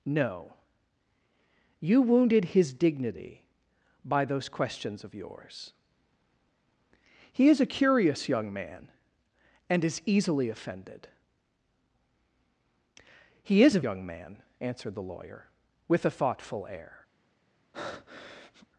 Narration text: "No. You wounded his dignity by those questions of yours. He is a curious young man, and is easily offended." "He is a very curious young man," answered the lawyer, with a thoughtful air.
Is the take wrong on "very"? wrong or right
wrong